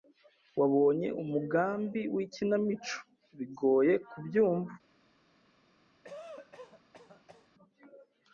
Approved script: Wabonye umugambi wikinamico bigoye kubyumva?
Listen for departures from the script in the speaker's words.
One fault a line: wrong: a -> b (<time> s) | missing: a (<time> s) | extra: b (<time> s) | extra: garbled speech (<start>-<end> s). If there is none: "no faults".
no faults